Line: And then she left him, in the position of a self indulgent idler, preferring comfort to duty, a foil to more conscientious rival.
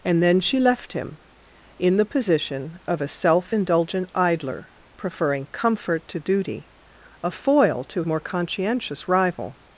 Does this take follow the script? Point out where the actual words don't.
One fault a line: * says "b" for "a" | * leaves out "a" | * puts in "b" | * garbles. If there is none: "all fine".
all fine